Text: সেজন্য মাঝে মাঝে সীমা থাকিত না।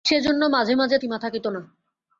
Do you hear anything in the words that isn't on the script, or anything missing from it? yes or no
no